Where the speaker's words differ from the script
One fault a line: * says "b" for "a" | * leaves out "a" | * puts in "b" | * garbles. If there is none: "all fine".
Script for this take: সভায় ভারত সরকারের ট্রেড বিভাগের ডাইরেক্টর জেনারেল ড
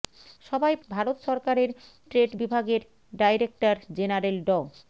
all fine